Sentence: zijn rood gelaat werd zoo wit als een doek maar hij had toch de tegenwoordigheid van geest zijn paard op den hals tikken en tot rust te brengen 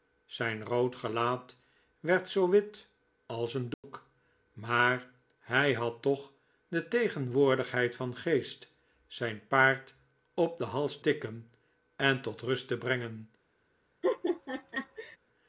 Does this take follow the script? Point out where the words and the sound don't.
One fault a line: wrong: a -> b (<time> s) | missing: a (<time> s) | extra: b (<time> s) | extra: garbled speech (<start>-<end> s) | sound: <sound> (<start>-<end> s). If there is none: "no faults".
sound: dropout (3.7-3.8 s)
sound: laugh (14.0-15.2 s)